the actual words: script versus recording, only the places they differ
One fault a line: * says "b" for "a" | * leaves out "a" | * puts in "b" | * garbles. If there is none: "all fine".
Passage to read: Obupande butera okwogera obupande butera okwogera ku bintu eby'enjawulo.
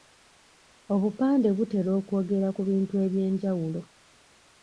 * leaves out "obupande butera okwogera"